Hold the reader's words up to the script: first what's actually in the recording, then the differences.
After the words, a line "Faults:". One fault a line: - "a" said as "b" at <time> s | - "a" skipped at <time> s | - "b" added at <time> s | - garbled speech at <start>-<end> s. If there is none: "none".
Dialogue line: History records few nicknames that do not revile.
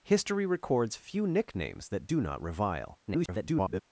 History records few nicknames that do not revile. [garbled]
Faults:
- garbled speech at 3.1-3.8 s